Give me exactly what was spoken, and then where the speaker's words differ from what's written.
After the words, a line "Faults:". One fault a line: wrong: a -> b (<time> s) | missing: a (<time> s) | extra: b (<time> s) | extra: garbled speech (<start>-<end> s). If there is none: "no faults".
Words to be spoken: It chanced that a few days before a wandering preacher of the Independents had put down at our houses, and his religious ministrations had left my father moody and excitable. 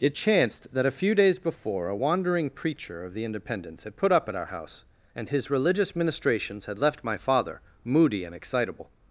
It chanced that a few days before a wandering preacher of the Independents had put up at our house, and his religious ministrations had left my father moody and excitable.
Faults:
wrong: down -> up (4.1 s)
wrong: houses -> house (4.4 s)